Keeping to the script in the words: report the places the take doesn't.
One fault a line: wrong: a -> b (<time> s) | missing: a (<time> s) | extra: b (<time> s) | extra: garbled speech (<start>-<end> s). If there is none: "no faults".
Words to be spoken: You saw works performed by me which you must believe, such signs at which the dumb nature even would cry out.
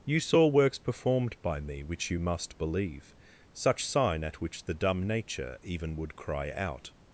wrong: signs -> sign (3.8 s)